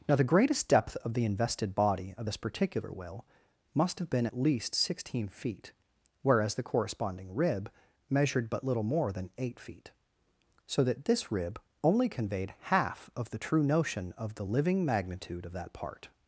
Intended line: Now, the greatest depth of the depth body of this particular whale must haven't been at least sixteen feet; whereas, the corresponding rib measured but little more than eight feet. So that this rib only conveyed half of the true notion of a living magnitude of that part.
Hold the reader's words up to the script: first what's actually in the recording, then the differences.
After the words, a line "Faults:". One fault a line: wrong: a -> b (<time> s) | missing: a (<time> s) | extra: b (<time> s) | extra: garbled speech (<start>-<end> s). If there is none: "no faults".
Now, the greatest depth of the invested body of this particular whale must have been at least sixteen feet; whereas, the corresponding rib measured but little more than eight feet. So that this rib only conveyed half of the true notion of the living magnitude of that part.
Faults:
wrong: depth -> invested (1.2 s)
wrong: haven't -> have (4.0 s)
wrong: a -> the (14.3 s)